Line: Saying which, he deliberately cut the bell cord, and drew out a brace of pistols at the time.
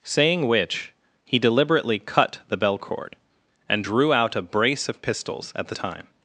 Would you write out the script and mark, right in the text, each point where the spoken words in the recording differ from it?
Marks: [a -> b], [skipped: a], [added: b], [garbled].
Saying which, he deliberately cut the bell cord, and drew out a brace of pistols at the time.